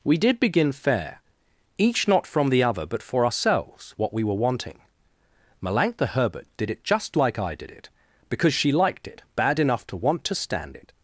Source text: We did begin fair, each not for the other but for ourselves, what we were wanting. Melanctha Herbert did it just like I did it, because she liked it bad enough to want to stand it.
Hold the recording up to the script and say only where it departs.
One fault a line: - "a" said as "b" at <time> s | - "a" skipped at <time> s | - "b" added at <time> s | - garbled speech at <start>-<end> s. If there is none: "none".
- "for" said as "from" at 2.2 s